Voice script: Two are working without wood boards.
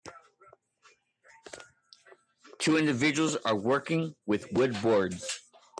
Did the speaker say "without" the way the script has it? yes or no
no